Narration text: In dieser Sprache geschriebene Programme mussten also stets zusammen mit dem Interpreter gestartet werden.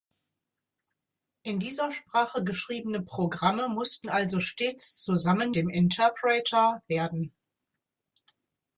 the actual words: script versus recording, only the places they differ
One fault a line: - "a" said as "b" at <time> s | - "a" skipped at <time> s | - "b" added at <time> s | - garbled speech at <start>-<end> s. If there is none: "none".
- "mit" skipped at 5.5 s
- "gestartet" skipped at 6.8 s